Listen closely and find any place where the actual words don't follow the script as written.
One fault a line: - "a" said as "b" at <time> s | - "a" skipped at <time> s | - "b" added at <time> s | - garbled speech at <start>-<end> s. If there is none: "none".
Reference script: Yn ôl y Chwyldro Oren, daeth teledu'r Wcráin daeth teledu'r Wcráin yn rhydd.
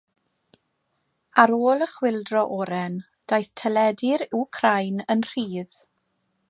- "Yn" said as "Ar" at 1.4 s
- "daeth teledu'r Wcráin" skipped at 5.1 s